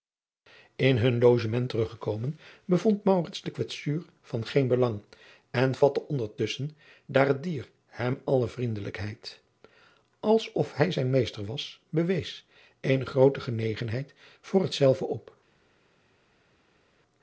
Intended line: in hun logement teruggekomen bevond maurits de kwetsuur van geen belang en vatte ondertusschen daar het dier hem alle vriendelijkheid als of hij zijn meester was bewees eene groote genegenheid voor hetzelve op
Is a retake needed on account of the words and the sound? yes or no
no